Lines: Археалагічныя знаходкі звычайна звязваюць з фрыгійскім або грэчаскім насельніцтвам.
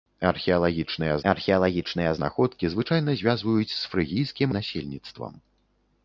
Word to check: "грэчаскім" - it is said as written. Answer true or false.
false